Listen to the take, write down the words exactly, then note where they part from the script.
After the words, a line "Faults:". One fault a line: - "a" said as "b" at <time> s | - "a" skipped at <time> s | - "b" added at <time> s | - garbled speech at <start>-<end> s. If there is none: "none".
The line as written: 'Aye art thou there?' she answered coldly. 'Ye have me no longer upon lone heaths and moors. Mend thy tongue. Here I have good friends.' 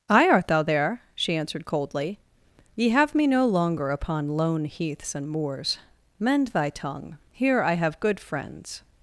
'Aye art thou there?' she answered coldly. 'Ye have me no longer upon lone heaths and moors. Mend thy tongue. Here I have good friends.'
Faults:
none